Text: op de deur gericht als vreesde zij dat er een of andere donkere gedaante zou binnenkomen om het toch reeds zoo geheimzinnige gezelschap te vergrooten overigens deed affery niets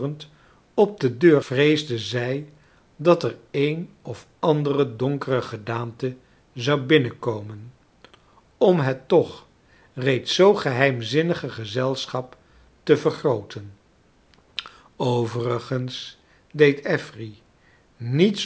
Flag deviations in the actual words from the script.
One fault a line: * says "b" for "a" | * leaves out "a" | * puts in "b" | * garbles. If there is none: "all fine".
* leaves out "gericht als"